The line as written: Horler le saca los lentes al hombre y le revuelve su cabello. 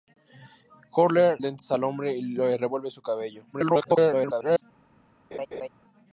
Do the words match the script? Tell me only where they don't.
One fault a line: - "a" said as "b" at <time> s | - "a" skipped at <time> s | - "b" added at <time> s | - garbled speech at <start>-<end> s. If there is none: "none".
- "le saca los" skipped at 1.4 s
- garbled speech at 3.5-4.6 s